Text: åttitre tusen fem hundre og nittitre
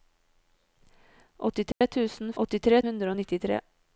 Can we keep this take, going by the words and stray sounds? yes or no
no